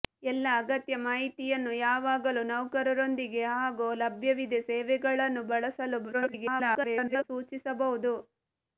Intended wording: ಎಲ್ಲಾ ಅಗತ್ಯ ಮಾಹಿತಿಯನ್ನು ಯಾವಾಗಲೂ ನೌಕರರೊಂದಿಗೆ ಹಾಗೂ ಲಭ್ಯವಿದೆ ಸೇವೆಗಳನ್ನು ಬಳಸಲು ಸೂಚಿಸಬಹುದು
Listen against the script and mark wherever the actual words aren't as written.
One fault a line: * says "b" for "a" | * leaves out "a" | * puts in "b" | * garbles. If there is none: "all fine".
* garbles